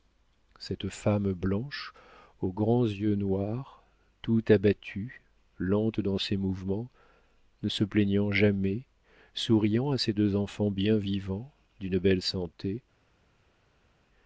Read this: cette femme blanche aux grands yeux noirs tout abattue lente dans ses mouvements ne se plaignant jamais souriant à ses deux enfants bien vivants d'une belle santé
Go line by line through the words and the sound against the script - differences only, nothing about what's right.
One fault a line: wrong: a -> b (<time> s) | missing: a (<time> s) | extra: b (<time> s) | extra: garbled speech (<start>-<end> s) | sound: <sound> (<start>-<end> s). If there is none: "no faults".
no faults